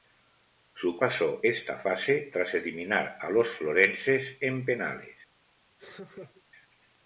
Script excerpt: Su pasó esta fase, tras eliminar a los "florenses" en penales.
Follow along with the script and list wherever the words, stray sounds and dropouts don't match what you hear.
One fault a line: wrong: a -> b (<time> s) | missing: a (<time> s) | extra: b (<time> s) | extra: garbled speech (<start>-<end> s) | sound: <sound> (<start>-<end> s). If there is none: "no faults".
sound: laugh (5.8-6.4 s)